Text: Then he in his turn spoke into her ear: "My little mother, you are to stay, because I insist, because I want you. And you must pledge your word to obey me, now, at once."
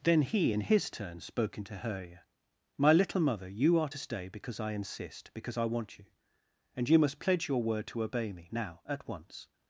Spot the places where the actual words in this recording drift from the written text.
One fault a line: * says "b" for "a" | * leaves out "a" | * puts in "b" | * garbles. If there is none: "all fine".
all fine